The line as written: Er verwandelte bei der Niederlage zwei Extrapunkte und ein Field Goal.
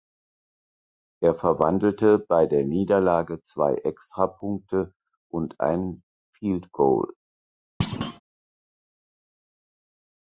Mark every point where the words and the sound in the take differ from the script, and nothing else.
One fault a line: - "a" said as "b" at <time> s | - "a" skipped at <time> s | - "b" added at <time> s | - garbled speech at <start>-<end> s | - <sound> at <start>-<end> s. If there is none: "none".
- thud at 7.8-8.2 s